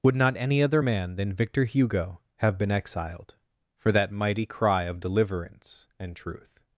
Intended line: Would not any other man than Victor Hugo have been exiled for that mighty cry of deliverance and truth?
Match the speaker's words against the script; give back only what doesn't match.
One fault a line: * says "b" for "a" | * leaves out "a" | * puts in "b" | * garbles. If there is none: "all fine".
all fine